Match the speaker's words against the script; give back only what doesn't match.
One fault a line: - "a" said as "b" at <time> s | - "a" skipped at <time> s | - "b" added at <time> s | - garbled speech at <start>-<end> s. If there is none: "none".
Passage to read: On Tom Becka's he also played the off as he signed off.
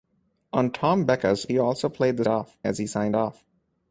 none